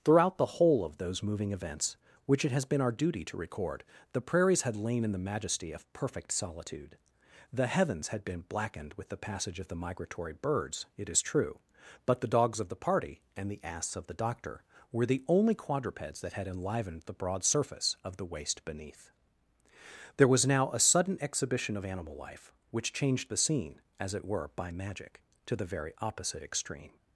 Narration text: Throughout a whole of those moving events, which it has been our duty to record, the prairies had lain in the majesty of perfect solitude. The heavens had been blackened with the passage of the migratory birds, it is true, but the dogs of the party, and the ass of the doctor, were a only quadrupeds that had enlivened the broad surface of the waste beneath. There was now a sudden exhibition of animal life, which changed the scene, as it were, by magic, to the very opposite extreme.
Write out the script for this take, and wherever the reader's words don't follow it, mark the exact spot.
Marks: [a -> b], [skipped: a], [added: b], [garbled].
Throughout [a -> the] whole of those moving events, which it has been our duty to record, the prairies had lain in the majesty of perfect solitude. The heavens had been blackened with the passage of the migratory birds, it is true, but the dogs of the party, and the ass of the doctor, were [a -> the] only quadrupeds that had enlivened the broad surface of the waste beneath. There was now a sudden exhibition of animal life, which changed the scene, as it were, by magic, to the very opposite extreme.